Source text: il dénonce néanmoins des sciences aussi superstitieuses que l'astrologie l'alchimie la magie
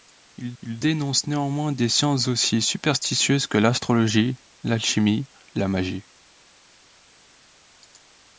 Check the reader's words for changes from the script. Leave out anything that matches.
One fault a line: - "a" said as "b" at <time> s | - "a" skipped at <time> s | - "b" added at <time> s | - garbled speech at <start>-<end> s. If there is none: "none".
- "il" added at 0.6 s